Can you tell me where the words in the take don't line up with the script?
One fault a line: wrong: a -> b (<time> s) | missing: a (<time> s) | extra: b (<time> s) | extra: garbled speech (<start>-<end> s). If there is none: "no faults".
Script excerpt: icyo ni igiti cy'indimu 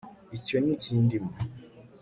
missing: igiti (0.7 s)